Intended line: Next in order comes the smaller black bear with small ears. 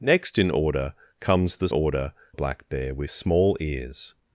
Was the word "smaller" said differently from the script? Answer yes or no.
yes